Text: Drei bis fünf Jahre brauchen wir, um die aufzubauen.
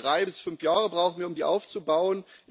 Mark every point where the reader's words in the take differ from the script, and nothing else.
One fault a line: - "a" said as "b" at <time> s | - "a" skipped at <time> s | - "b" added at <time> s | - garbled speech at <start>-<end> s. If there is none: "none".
none